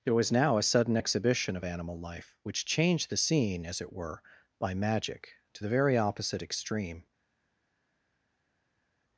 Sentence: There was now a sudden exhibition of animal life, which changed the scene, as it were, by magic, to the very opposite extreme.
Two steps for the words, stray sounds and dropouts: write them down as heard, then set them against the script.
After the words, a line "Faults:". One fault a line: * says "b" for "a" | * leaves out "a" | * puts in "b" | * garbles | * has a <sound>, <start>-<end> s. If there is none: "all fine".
There was now a sudden exhibition of animal life, which changed the scene, as it were, by magic, to the very opposite extreme.
Faults:
all fine